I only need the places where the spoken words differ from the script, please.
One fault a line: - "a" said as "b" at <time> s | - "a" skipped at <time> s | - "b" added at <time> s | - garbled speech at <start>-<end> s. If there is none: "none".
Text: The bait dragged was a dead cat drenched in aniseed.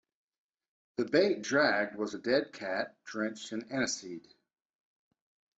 none